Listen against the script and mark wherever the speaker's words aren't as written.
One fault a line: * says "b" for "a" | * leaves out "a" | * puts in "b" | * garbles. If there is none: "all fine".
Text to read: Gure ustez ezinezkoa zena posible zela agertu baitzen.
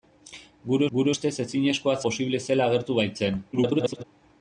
* puts in "gure"
* leaves out "zena"
* garbles